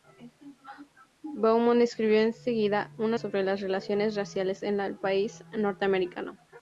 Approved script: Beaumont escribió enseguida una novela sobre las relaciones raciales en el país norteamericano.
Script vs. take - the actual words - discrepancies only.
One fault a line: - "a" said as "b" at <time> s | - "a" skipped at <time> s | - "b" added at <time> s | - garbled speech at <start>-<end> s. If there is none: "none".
- "novela" skipped at 3.2 s